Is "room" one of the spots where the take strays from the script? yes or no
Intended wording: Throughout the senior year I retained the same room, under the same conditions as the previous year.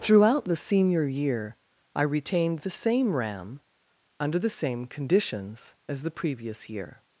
yes